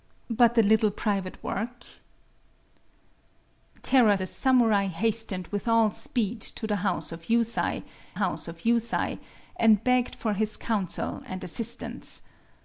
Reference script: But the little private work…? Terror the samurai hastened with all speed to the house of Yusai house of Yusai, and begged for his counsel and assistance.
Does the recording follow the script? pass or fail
pass